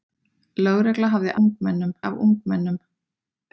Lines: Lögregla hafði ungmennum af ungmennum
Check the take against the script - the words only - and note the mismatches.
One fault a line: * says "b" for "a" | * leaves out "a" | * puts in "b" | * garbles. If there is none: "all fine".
all fine